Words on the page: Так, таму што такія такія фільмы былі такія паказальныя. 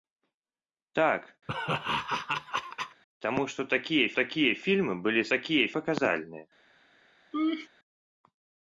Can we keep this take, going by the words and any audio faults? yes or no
no